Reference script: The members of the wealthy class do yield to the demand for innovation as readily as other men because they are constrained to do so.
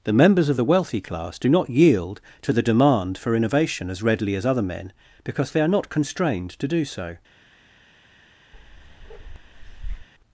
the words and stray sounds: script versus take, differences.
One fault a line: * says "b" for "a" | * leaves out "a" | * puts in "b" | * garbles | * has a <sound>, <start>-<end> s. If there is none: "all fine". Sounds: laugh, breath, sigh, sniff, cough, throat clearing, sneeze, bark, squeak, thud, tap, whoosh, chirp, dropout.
* puts in "not"
* puts in "not"
* has a bark, 8.5-10.1 s